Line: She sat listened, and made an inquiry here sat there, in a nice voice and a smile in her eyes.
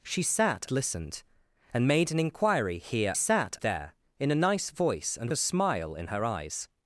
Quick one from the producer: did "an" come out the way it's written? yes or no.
yes